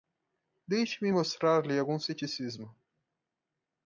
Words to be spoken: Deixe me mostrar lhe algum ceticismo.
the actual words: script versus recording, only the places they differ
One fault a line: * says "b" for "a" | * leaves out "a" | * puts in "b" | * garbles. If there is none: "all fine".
all fine